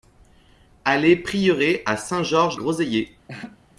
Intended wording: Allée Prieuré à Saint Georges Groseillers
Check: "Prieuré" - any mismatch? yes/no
no